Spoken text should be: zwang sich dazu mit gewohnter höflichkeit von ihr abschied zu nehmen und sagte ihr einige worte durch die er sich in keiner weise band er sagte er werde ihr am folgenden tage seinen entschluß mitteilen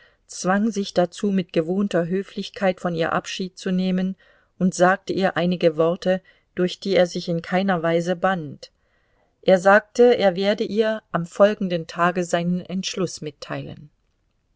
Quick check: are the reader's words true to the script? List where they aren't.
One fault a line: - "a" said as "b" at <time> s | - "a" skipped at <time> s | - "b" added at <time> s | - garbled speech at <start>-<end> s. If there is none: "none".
none